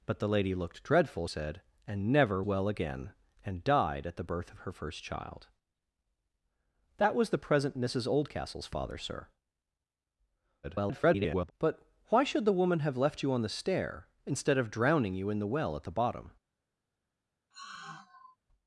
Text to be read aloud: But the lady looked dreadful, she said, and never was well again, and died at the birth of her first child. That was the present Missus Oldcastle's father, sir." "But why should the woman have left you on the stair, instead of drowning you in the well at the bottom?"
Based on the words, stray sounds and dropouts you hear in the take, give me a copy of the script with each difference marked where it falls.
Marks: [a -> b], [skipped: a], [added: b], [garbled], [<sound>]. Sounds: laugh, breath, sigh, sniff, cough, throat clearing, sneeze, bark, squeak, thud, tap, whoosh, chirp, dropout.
But the lady looked dreadful, [skipped: she] said, and never [skipped: was] well again, and died at the birth of her first child. That was the present Missus Oldcastle's father, sir." [garbled] "But why should the woman have left you on the stair, instead of drowning you in the well at the bottom?" [sigh]